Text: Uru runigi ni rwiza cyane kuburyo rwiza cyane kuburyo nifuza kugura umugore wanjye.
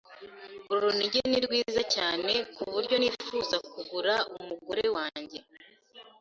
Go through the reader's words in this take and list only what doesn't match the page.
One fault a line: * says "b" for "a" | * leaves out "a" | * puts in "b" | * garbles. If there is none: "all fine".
* leaves out "rwiza cyane kuburyo"